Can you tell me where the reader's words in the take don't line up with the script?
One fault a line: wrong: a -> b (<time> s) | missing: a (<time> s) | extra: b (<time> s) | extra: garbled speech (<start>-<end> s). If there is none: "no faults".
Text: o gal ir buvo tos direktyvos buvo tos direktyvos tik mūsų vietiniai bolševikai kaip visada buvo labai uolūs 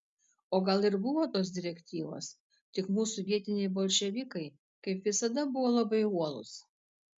missing: buvo tos direktyvos (2.3 s)